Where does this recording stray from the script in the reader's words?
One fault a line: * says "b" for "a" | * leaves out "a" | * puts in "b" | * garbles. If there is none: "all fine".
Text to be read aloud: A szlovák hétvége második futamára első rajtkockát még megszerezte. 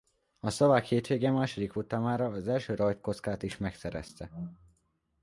* puts in "az"
* says "is" for "még"